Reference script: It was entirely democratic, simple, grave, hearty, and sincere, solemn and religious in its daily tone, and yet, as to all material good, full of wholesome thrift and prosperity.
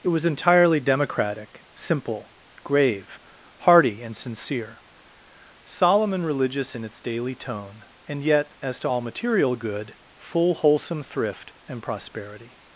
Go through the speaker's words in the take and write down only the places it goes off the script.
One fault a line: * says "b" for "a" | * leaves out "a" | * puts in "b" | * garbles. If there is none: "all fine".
* leaves out "of"